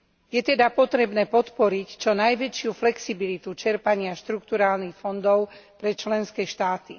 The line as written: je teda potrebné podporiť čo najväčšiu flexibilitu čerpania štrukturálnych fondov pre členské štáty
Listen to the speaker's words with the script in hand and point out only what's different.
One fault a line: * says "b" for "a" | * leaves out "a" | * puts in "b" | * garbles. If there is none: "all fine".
all fine